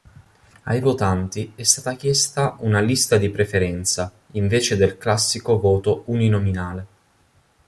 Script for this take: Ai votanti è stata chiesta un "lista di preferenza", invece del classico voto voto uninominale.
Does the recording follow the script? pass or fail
fail